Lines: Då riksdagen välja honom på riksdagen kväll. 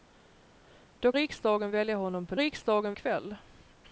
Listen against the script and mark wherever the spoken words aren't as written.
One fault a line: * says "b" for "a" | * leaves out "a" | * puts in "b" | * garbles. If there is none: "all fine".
all fine